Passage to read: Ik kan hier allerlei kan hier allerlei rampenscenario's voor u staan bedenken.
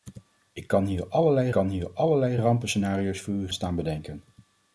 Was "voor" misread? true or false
false